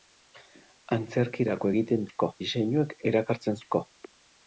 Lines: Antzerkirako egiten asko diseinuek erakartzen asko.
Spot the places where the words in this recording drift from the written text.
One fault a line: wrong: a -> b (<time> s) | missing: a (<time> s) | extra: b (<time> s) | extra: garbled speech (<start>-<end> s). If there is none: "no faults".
no faults